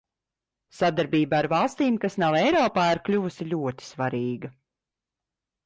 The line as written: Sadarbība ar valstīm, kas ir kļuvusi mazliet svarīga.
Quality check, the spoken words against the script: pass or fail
fail